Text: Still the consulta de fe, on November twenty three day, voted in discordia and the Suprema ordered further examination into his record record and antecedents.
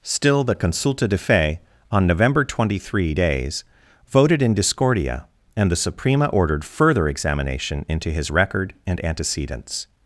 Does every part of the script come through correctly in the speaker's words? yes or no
no